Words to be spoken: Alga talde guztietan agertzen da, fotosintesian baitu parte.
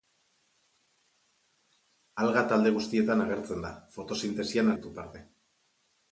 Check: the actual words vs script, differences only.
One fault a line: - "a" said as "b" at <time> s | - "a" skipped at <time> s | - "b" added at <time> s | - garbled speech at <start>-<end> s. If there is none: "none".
none